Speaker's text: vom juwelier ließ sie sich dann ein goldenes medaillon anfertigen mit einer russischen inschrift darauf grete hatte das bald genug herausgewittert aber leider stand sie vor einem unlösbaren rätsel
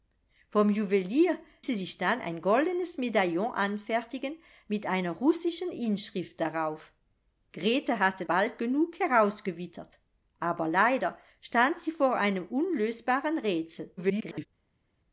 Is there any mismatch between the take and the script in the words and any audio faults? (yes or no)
yes